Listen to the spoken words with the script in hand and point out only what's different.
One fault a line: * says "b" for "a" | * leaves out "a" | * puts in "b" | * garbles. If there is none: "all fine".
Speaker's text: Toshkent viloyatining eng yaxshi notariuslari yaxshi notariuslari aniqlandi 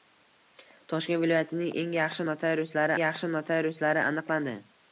all fine